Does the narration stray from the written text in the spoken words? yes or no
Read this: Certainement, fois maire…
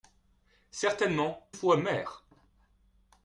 no